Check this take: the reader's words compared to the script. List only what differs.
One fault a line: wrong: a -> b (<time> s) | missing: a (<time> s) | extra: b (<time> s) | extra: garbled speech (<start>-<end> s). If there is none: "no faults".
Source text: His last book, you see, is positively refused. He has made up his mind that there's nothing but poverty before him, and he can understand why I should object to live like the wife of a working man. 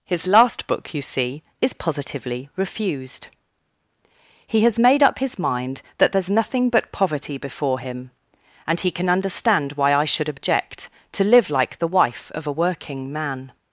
no faults